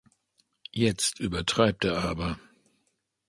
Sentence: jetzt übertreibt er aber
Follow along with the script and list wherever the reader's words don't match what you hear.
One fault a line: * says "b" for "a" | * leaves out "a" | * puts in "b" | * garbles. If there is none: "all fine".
all fine